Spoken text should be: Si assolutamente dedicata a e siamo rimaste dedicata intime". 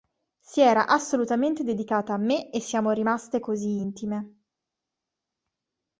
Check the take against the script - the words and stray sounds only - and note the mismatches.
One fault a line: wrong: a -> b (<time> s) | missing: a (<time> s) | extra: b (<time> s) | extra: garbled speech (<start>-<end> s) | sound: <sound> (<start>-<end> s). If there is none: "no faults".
extra: era (0.6 s)
extra: me (2.2 s)
wrong: dedicata -> così (3.4 s)